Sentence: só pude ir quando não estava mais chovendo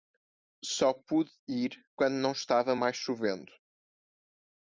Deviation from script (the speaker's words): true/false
false